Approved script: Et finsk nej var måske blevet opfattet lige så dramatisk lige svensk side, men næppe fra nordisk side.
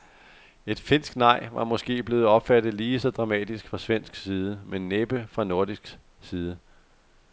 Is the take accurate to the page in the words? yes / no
no